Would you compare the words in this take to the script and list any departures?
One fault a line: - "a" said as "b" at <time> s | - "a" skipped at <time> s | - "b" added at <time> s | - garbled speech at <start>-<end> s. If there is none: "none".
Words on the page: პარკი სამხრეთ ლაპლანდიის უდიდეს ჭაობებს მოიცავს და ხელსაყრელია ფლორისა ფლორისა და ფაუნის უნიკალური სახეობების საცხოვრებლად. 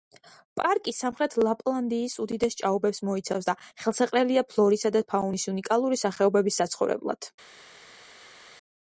- "ფლორისა" skipped at 4.9 s